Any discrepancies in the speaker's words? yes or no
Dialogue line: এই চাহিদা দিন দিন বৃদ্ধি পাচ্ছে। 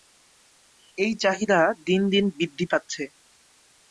no